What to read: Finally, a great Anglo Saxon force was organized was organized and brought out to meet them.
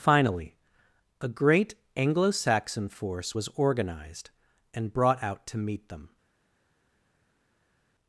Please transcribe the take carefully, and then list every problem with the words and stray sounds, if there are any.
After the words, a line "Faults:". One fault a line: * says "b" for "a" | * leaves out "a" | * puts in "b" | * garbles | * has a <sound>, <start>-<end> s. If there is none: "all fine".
Finally, a great Anglo Saxon force was organized and brought out to meet them.
Faults:
* leaves out "was organized"